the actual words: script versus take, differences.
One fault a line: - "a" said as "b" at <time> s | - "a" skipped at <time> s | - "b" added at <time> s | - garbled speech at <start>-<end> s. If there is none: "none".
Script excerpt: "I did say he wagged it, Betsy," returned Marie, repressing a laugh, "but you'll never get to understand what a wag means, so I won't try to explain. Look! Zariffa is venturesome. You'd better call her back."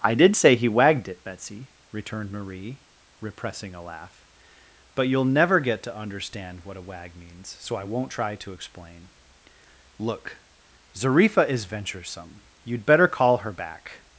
none